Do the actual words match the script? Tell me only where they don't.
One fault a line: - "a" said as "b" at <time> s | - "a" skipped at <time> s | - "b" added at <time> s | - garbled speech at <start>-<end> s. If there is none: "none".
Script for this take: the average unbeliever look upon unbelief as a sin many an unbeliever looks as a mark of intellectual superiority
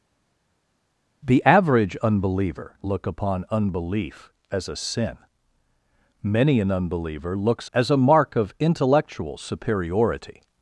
none